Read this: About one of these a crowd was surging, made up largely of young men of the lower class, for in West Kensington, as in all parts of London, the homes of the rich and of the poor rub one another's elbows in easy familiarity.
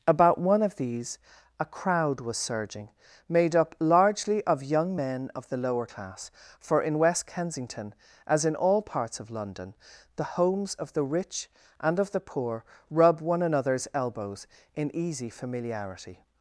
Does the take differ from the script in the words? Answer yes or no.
no